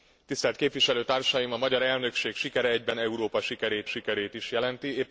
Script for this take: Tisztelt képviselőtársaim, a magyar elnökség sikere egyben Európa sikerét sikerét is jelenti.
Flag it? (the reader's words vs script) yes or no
no